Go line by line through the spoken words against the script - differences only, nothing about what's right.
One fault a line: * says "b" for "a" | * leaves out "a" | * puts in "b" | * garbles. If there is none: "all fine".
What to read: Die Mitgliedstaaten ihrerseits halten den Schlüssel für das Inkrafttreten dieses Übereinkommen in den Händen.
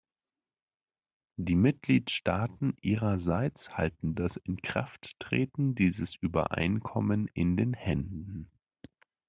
* leaves out "den Schlüssel für"